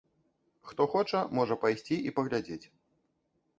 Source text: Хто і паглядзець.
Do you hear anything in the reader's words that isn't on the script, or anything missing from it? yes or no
yes